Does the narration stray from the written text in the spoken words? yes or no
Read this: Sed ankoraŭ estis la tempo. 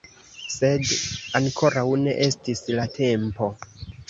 yes